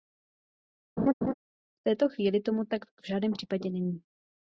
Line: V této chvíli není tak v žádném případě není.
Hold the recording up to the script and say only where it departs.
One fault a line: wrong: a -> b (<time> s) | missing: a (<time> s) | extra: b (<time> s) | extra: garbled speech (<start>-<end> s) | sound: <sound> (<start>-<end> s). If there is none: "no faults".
sound: laugh (1.0-1.3 s)
wrong: není -> tomu (2.4 s)